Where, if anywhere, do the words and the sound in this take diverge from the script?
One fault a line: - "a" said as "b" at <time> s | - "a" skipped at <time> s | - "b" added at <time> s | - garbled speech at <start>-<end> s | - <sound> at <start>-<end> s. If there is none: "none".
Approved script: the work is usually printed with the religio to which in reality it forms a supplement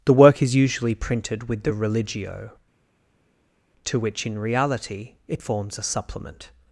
none